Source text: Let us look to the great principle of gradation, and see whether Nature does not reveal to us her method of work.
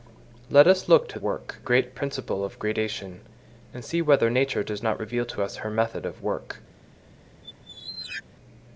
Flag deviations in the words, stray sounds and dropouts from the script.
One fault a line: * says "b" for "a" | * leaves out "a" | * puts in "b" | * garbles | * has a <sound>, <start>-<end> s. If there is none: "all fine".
* says "work" for "the"
* has a squeak, 7.4-8.2 s